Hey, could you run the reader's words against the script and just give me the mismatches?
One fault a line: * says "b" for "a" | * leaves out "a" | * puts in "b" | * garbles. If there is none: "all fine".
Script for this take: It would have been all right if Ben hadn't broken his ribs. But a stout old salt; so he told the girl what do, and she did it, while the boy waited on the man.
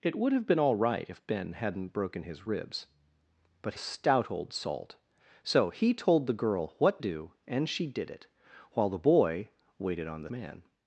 all fine